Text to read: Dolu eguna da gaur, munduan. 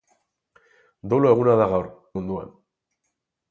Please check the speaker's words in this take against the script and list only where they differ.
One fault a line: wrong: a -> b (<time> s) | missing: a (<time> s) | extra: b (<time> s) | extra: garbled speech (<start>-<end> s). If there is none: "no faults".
no faults